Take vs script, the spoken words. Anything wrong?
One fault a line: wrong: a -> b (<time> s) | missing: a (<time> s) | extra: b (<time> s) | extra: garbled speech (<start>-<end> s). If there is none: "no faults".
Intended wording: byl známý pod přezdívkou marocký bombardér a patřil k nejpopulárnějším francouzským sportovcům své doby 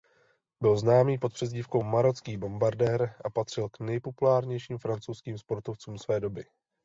no faults